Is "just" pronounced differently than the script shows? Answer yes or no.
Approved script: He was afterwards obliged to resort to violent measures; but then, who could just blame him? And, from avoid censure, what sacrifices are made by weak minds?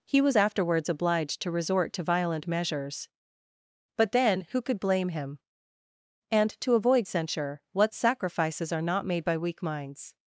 yes